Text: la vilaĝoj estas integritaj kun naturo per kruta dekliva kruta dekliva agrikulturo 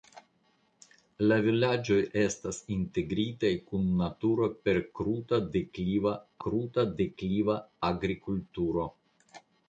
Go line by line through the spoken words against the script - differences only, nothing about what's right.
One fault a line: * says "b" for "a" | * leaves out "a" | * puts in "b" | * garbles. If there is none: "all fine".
all fine